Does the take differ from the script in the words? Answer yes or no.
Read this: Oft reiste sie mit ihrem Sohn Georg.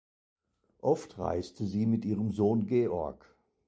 no